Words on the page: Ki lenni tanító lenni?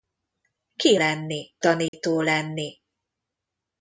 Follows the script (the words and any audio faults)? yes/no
no